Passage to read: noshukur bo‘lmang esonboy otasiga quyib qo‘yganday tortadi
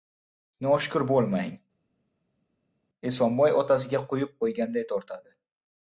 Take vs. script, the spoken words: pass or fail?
pass